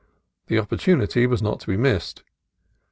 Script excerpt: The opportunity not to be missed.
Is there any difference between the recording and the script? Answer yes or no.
yes